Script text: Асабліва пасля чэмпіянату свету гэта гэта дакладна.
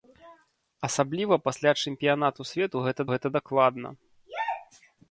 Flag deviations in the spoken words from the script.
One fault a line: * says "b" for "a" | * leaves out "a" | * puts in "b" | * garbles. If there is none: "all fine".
all fine